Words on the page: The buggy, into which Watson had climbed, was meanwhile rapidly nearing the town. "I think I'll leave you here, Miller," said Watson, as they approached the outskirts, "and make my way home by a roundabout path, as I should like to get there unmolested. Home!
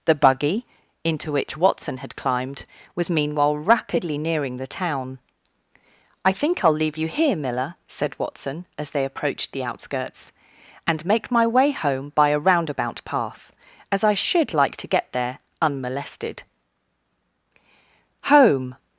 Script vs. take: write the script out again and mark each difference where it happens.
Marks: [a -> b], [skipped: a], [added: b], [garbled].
The buggy, into which Watson had climbed, was meanwhile rapidly nearing the town. "I think I'll leave you here, Miller," said Watson, as they approached the outskirts, "and make my way home by a roundabout path, as I should like to get there unmolested. Home!